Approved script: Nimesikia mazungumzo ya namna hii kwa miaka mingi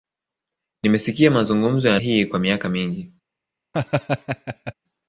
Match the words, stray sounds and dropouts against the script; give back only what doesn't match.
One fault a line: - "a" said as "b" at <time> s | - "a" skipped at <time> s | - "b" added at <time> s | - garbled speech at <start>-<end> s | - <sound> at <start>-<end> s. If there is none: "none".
- "namna" skipped at 2.0 s
- laugh at 3.7-4.7 s